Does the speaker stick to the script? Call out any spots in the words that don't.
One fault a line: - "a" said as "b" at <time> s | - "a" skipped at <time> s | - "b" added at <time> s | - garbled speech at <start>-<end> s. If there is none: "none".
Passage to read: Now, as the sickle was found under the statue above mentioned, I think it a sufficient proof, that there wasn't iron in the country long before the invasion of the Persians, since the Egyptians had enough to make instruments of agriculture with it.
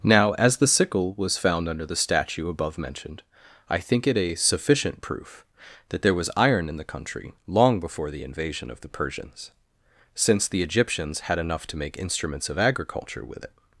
- "wasn't" said as "was" at 6.2 s